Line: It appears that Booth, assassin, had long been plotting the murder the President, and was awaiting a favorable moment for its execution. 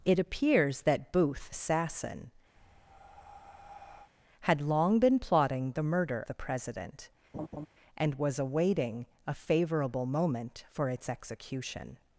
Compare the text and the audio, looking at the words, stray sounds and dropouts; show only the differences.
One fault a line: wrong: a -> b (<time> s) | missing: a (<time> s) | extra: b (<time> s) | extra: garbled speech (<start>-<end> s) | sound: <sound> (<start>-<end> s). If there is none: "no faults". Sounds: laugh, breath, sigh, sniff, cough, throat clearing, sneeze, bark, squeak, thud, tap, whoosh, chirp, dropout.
sound: breath (2.6-4.1 s)
sound: laugh (7.3-7.7 s)